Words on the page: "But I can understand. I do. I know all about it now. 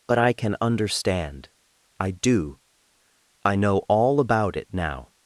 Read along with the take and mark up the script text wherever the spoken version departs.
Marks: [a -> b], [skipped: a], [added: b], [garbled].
"But I can understand. I do. I know all about it now.